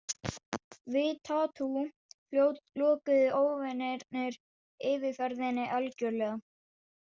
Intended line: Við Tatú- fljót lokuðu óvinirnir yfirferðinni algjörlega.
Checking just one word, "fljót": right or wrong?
right